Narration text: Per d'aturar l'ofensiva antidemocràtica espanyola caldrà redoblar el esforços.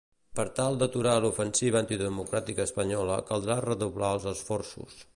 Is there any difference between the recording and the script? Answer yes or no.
yes